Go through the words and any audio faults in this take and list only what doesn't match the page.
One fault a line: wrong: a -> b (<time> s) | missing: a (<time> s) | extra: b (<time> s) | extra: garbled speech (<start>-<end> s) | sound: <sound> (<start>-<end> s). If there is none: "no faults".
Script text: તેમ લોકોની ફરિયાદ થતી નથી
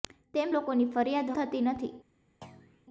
sound: thud (2.4-2.9 s)